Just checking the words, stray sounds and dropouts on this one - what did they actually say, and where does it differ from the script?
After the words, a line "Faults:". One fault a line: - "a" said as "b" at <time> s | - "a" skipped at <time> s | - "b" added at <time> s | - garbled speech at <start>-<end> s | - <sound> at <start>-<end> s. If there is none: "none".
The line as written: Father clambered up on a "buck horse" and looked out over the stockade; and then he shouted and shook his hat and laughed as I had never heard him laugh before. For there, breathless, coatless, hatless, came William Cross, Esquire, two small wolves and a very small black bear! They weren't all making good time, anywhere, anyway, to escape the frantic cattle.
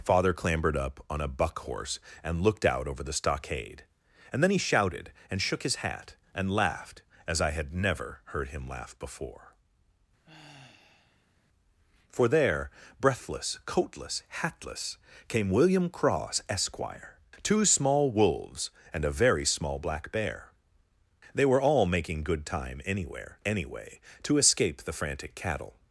Father clambered up on a "buck horse" and looked out over the stockade; and then he shouted and shook his hat and laughed as I had never heard him laugh before. For there, breathless, coatless, hatless, came William Cross, Esquire, two small wolves and a very small black bear! They were all making good time, anywhere, anyway, to escape the frantic cattle.
Faults:
- sigh at 10.2-11.4 s
- "weren't" said as "were" at 21.4 s